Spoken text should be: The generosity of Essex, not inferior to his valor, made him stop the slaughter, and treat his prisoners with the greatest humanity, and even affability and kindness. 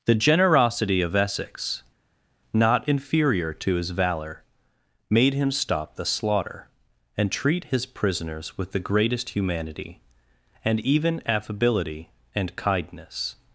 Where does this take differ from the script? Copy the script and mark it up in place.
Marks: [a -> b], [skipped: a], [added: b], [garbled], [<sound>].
The generosity of Essex, not inferior to his valor, made him stop the slaughter, and treat his prisoners with the greatest humanity, and even affability and kindness.